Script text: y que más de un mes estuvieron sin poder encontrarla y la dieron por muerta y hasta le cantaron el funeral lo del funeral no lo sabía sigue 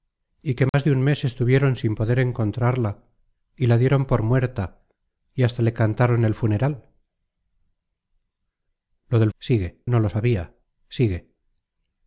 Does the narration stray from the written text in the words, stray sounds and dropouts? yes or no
yes